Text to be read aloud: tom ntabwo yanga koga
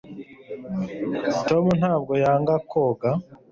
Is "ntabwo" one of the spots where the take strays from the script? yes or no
no